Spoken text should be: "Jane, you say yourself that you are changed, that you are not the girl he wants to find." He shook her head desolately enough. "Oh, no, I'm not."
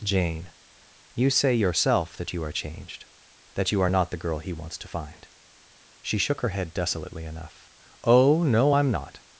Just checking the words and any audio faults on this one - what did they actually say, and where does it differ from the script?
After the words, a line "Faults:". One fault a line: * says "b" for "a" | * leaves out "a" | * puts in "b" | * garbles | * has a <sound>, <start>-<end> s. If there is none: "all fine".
"Jane, you say yourself that you are changed, that you are not the girl he wants to find." She shook her head desolately enough. "Oh, no, I'm not."
Faults:
* says "She" for "He"